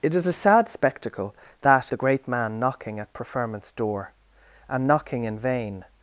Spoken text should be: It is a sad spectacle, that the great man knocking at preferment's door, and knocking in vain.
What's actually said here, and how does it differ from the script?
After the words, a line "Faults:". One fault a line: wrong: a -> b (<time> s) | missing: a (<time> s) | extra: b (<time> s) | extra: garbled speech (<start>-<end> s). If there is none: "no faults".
It is a sad spectacle, that the great man knocking at preferment's door, and knocking in vain.
Faults:
no faults